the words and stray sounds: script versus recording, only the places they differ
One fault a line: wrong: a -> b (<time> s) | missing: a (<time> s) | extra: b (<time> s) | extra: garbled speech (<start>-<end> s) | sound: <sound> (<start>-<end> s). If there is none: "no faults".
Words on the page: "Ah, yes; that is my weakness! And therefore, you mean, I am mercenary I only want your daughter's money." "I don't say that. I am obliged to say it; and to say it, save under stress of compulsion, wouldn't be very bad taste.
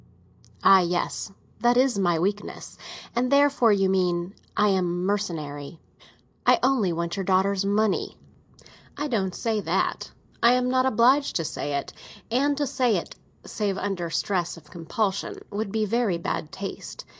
extra: not (10.7 s)
wrong: wouldn't -> would (15.5 s)